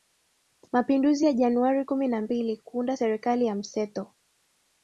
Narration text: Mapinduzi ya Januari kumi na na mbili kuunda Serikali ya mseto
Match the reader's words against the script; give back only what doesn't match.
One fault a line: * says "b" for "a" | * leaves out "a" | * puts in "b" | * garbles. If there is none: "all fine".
* leaves out "na"